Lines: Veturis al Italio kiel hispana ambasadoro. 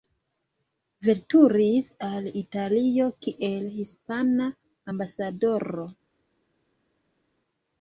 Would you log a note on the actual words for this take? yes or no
no